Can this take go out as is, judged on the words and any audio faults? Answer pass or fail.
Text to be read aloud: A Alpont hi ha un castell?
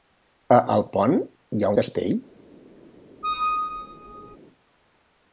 fail